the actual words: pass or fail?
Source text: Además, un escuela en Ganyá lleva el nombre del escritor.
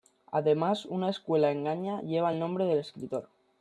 fail